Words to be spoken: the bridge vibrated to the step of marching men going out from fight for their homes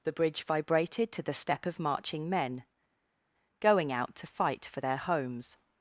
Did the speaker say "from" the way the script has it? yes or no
no